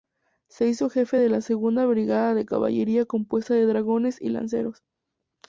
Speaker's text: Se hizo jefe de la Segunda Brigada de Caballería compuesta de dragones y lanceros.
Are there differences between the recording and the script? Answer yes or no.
no